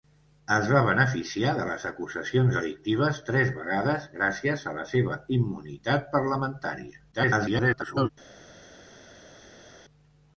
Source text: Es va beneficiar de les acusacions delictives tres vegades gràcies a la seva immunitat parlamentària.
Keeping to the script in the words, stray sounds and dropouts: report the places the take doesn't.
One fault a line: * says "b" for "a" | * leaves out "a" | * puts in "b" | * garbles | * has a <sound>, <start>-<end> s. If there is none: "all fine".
* garbles